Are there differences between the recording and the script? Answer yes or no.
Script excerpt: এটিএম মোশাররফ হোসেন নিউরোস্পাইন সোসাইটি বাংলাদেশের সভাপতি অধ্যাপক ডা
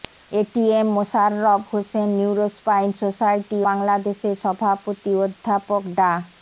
no